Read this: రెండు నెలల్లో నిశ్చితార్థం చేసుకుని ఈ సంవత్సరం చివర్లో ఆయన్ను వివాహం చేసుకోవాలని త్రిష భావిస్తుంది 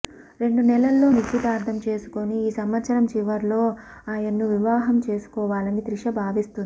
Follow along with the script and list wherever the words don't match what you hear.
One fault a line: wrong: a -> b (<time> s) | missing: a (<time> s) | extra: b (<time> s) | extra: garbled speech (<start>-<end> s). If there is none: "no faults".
no faults